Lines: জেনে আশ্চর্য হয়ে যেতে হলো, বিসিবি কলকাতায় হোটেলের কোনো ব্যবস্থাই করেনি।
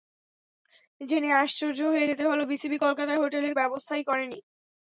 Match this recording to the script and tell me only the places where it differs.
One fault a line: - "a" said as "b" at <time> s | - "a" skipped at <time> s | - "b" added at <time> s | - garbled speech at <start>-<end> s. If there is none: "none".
- "কোনো" skipped at 3.5 s